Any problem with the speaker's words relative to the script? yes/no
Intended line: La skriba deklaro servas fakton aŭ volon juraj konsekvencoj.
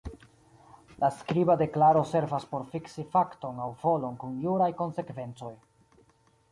yes